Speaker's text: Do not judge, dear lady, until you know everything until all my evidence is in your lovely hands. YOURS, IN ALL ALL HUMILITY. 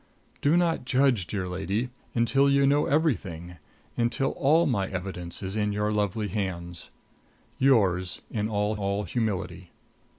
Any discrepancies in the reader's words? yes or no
no